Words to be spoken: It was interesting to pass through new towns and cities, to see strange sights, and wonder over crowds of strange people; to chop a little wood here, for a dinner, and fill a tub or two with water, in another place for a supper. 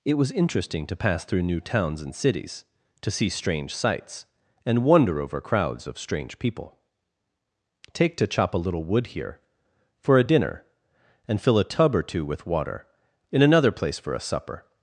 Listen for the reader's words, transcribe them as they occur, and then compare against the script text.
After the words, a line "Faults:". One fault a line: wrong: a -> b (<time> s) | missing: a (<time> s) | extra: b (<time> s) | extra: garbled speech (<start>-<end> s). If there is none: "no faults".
It was interesting to pass through new towns and cities, to see strange sights, and wonder over crowds of strange people; take to chop a little wood here, for a dinner, and fill a tub or two with water, in another place for a supper.
Faults:
extra: take (7.9 s)